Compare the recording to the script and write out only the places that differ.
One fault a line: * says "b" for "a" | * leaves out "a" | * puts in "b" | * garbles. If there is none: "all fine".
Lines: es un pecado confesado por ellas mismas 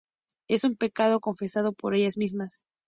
all fine